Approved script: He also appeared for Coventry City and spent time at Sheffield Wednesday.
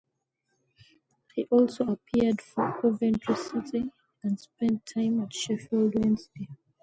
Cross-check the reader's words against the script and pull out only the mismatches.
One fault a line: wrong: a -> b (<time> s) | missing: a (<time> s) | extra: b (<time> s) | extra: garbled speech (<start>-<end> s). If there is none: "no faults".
no faults